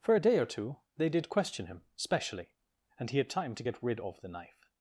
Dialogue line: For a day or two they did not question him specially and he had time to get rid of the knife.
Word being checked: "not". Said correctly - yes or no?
no